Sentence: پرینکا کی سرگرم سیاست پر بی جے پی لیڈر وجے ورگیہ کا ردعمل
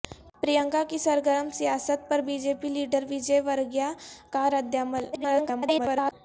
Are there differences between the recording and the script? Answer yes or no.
yes